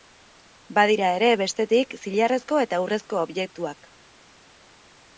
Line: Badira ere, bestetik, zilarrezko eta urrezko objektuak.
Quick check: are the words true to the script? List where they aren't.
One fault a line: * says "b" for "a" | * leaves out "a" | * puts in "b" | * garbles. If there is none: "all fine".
all fine